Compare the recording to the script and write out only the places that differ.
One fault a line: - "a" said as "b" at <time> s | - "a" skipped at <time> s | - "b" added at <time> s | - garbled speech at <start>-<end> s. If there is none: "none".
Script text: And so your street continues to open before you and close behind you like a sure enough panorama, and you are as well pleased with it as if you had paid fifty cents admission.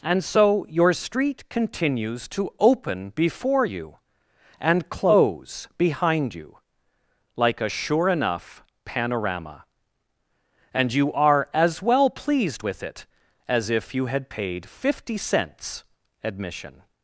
none